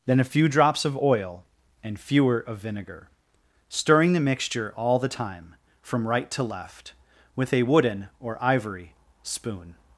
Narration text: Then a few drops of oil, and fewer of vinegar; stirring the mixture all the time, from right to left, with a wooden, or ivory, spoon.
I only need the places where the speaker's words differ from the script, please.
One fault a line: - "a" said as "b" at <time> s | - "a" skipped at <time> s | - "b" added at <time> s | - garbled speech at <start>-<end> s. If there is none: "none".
none